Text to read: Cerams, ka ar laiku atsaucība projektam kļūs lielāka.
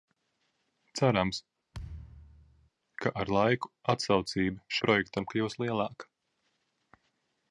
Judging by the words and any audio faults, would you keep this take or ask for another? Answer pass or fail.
fail